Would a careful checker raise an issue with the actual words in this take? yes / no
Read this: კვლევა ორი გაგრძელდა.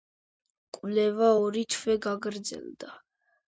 yes